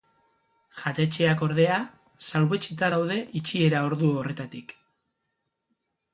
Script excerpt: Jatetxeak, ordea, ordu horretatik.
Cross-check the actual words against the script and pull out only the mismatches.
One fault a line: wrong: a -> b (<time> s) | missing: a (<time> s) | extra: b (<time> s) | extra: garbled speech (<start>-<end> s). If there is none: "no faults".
extra: salbuetsita daude itxiera (2.3 s)